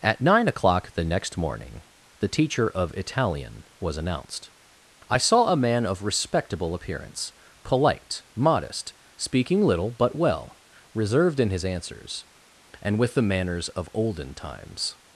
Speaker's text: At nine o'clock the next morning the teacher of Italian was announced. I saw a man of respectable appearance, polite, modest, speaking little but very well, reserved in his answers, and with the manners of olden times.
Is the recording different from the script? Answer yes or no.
yes